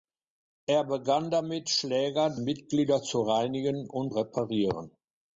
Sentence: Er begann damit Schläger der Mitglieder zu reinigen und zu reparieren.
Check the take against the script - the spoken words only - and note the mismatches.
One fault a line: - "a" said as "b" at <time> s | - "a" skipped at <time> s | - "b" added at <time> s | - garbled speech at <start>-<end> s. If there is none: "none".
- "der" skipped at 2.4 s
- "zu" skipped at 4.1 s